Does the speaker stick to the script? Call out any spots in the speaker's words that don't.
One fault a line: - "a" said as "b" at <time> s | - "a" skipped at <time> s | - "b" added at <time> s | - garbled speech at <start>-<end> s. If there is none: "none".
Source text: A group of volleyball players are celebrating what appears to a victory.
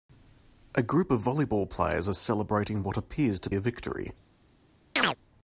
none